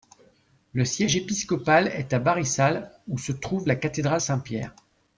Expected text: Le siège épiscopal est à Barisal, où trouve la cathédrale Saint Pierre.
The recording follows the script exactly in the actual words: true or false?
false